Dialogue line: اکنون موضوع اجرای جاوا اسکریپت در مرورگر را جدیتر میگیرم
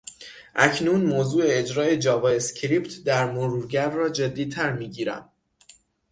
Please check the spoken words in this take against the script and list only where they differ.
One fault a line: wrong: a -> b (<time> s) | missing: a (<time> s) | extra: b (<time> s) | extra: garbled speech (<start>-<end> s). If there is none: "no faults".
no faults